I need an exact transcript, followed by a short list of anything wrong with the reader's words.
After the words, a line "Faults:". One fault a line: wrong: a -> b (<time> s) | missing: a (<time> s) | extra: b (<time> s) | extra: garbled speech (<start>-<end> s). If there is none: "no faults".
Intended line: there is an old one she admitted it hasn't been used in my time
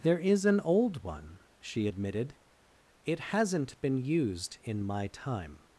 there is an old one she admitted it hasn't been used in my time
Faults:
no faults